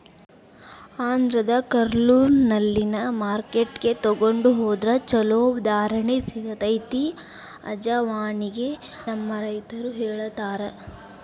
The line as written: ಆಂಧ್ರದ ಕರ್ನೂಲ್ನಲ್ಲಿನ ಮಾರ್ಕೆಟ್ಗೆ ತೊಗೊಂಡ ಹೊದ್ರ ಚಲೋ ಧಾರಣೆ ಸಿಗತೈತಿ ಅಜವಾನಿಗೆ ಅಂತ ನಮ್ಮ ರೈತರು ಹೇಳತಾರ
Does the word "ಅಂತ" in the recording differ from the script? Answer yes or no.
yes